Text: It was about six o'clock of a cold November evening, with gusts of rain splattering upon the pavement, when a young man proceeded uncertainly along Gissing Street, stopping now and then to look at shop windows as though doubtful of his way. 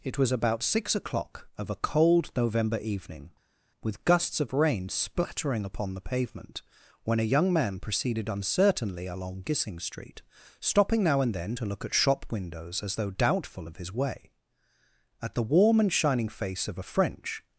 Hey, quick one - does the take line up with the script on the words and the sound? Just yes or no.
no